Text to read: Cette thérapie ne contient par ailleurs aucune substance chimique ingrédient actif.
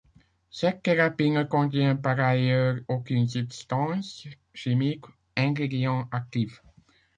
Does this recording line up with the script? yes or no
yes